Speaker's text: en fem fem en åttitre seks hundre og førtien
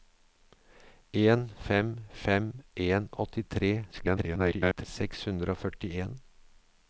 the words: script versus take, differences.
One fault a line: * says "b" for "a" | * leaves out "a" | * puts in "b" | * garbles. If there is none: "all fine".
* garbles